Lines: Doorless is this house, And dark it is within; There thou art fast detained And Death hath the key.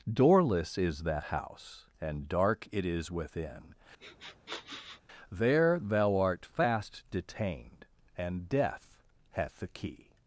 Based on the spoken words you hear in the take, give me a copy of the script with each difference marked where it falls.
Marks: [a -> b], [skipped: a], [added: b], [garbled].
Doorless is [this -> that] house, And dark it is within; There thou art fast detained And Death hath the key.